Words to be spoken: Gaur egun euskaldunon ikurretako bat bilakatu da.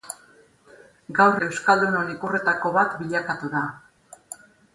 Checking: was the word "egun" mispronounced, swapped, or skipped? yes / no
yes